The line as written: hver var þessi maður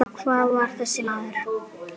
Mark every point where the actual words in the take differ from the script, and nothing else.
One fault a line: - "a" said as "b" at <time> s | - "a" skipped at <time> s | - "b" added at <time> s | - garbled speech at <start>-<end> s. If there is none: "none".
none